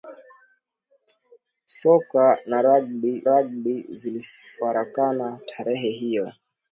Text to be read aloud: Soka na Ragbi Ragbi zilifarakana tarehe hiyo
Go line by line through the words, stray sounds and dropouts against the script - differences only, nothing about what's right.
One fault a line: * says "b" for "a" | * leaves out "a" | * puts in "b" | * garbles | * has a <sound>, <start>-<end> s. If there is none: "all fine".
all fine